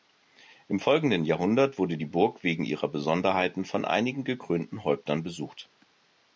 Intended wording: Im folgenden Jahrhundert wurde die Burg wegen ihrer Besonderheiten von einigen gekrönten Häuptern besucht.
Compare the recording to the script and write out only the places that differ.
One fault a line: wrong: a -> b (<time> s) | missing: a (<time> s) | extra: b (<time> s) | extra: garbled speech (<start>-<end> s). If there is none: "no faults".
no faults